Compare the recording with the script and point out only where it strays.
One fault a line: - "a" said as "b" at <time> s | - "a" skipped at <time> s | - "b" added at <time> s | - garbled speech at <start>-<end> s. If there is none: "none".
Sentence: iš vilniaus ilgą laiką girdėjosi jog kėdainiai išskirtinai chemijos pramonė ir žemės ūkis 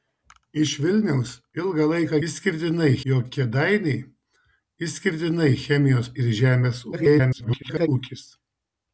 - "girdėjosi" said as "išskirtinai" at 2.3 s
- "pramonė" skipped at 6.1 s
- garbled speech at 6.9-7.9 s